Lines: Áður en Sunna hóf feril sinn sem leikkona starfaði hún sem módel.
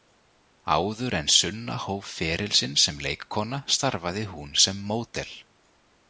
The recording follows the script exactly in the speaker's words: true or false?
true